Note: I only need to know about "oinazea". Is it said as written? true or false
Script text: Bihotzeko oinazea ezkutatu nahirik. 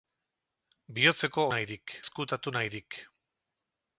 false